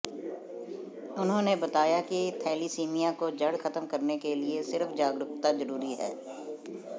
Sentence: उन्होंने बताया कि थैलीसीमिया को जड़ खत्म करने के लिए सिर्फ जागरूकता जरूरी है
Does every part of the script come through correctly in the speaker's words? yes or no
yes